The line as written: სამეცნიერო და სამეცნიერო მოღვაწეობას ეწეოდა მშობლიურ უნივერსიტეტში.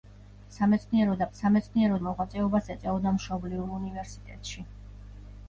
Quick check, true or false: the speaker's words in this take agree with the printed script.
true